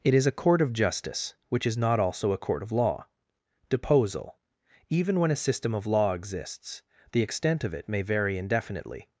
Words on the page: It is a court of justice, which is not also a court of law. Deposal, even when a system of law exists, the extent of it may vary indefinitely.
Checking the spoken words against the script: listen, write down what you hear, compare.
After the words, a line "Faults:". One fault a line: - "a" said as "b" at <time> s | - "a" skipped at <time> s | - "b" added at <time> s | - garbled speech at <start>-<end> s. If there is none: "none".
It is a court of justice, which is not also a court of law. Deposal, even when a system of law exists, the extent of it may vary indefinitely.
Faults:
none